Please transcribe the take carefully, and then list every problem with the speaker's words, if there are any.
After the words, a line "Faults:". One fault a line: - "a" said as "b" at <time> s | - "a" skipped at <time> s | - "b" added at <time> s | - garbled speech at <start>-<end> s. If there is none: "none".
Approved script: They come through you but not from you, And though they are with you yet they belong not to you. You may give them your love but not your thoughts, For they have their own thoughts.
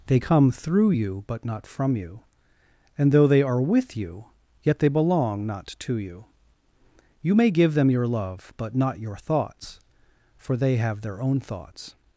They come through you but not from you, And though they are with you yet they belong not to you. You may give them your love but not your thoughts, For they have their own thoughts.
Faults:
none